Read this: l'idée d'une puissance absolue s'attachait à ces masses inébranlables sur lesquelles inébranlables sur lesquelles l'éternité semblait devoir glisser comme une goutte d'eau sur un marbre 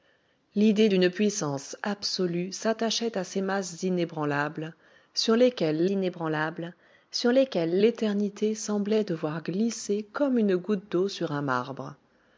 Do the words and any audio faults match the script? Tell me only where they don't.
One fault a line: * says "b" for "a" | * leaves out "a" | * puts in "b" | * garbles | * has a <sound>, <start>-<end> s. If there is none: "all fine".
all fine